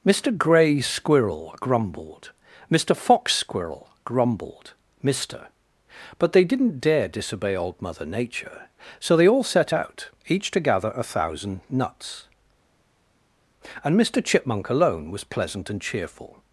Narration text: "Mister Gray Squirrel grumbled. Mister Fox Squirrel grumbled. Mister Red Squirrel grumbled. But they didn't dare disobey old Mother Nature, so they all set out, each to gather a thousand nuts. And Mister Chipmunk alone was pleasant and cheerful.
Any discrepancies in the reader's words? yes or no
yes